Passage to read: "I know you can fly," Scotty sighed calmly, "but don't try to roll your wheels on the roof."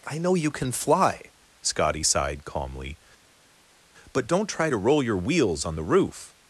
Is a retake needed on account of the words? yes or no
no